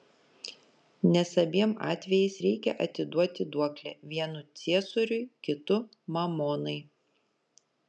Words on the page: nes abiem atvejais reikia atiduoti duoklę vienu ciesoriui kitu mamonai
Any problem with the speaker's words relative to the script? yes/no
no